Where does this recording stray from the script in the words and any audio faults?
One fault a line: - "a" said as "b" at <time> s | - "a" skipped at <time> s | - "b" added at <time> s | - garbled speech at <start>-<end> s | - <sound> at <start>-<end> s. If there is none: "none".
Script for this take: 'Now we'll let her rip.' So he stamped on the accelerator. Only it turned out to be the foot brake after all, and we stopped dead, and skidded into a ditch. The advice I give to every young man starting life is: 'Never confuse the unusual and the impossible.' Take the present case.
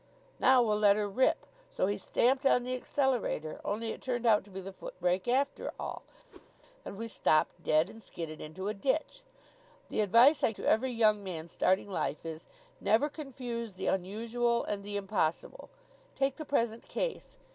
- whoosh at 6.3-6.5 s
- "give" skipped at 10.5 s